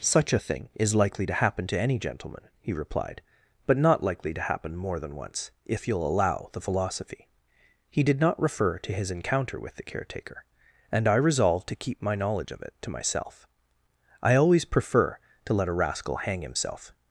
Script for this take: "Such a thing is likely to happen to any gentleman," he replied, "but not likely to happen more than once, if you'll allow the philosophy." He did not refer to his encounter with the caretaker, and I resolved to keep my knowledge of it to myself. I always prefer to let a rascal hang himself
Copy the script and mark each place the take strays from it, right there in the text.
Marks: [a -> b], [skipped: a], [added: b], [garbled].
"Such a thing is likely to happen to any gentleman," he replied, "but not likely to happen more than once, if you'll allow the philosophy." He did not refer to his encounter with the caretaker, and I resolved to keep my knowledge of it to myself. I always prefer to let a rascal hang himself